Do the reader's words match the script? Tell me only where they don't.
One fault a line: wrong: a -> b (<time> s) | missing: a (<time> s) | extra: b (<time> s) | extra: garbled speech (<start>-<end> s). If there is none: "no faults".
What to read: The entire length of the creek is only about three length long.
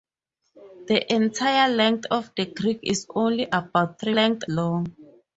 no faults